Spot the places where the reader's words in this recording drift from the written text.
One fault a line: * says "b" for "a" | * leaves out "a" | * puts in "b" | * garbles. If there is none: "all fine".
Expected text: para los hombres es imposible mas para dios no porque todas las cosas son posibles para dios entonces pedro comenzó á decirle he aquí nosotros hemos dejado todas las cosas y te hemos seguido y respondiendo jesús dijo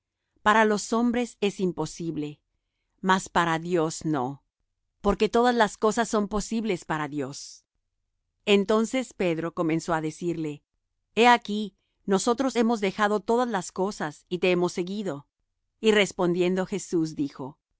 all fine